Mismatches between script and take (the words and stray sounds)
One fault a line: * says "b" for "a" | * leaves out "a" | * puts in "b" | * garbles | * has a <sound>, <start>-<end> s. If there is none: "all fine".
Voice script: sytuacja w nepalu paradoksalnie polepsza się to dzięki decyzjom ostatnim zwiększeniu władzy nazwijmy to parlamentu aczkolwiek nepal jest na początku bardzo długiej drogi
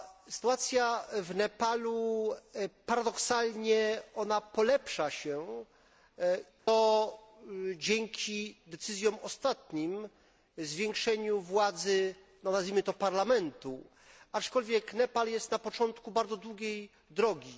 * has a dropout, 6.6-6.7 s